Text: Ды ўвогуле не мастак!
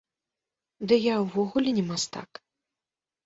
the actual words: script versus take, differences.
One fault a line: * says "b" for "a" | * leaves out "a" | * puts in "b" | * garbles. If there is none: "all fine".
* puts in "я"